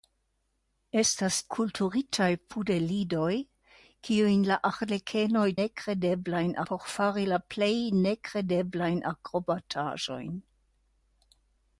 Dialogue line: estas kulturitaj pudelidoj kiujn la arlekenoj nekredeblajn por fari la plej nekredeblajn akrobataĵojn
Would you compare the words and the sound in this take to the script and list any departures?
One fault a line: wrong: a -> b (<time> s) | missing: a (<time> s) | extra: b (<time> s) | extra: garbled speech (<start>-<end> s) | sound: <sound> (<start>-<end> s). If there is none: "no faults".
no faults